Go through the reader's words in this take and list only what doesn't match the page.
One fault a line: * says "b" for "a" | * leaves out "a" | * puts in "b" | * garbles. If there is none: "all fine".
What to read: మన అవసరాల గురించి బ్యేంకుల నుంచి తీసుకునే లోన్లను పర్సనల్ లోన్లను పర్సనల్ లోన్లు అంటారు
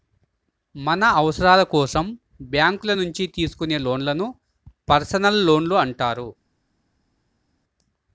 * says "కోసం" for "గురించి"
* leaves out "లోన్లను పర్సనల్"